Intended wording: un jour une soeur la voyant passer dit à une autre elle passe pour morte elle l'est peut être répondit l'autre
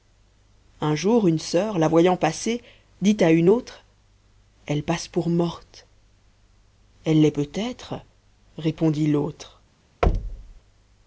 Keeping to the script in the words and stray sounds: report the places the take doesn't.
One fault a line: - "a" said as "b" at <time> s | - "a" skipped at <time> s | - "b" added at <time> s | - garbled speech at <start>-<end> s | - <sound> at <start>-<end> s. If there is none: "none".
- thud at 10.0-10.6 s